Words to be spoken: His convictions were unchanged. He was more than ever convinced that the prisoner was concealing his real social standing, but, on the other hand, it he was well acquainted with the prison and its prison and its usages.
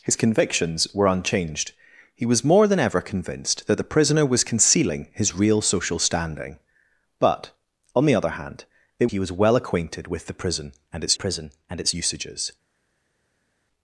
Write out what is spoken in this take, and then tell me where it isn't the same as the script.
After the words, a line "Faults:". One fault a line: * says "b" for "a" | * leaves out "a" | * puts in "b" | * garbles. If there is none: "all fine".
His convictions were unchanged. He was more than ever convinced that the prisoner was concealing his real social standing, but, on the other hand, it he was well acquainted with the prison and its prison and its usages.
Faults:
all fine